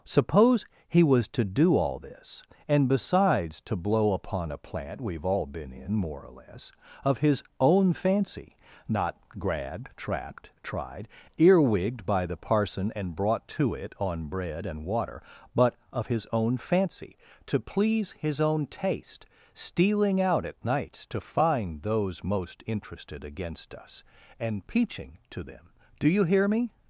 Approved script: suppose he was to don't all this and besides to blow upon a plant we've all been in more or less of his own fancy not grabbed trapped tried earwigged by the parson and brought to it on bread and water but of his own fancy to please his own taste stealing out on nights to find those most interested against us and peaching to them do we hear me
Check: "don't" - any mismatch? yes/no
yes